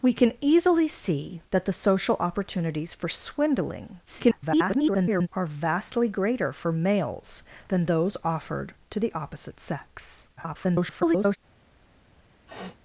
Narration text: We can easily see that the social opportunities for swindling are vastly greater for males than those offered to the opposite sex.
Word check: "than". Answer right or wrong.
right